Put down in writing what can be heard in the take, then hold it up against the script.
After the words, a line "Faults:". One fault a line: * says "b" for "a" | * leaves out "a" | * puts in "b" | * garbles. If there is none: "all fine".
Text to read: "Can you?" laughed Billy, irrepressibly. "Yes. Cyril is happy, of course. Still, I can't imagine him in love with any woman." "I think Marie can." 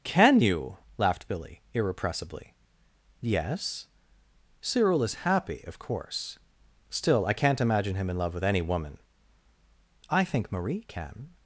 "Can you?" laughed Billy, irrepressibly. "Yes. Cyril is happy, of course. Still, I can't imagine him in love with any woman." "I think Marie can."
Faults:
all fine